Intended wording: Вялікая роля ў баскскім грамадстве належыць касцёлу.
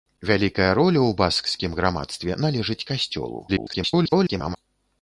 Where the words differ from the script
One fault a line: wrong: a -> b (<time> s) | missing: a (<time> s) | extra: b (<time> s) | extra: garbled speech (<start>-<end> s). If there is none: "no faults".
extra: garbled speech (3.5-4.6 s)